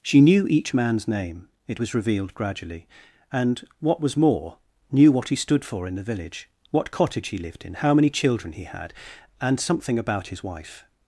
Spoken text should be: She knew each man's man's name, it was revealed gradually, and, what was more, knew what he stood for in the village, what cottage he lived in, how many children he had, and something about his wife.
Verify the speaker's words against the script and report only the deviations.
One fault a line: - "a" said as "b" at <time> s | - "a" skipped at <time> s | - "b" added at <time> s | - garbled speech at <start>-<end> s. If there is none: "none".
- "man's" skipped at 1.1 s